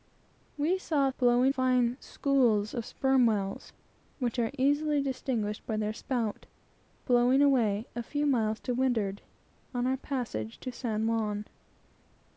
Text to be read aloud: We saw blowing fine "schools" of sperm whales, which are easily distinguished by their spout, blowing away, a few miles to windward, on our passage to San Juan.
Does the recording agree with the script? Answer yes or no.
yes